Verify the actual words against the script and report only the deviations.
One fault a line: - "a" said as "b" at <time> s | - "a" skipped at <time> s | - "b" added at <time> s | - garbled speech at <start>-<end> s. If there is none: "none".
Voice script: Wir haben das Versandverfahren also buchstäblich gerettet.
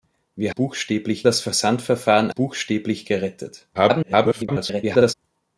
- "haben" said as "buchstäblich" at 0.5 s
- "also" skipped at 2.3 s
- garbled speech at 3.7-5.1 s